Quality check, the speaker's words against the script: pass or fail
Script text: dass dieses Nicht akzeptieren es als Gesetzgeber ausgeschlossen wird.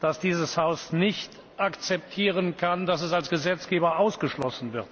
fail